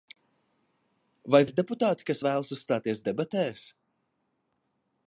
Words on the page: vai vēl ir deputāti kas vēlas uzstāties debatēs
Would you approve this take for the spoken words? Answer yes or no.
no